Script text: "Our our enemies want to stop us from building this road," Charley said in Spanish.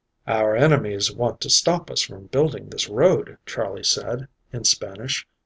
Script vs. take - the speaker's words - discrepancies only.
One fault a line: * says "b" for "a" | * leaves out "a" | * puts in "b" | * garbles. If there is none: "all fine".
* leaves out "our"